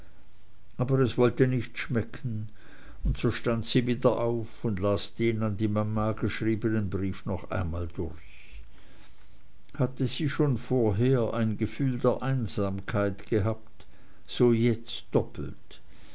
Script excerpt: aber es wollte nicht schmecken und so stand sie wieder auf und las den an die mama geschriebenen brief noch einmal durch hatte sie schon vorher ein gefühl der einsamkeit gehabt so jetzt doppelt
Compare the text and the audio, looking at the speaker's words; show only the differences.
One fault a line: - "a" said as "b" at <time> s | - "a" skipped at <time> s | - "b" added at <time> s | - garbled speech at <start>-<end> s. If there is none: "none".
none